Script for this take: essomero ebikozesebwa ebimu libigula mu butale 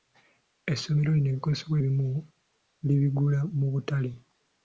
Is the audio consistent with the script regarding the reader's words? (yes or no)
no